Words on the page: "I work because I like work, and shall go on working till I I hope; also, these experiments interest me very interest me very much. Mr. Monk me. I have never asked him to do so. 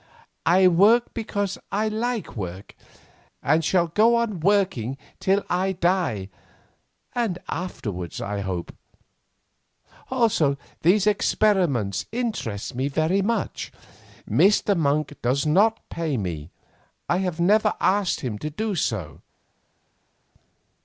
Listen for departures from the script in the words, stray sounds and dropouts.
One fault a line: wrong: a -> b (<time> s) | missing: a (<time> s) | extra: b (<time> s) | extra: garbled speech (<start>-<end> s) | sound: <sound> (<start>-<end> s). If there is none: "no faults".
extra: die and afterwards (5.7 s)
wrong: interest me very much Mr Monk -> much Mr Monk does not pay (13.2 s)